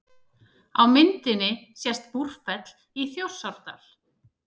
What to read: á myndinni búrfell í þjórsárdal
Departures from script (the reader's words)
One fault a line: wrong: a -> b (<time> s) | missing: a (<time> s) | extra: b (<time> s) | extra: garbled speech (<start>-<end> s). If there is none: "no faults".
extra: sést (1.8 s)